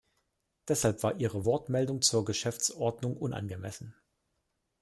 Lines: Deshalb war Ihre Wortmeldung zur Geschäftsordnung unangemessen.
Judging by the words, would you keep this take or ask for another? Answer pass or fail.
pass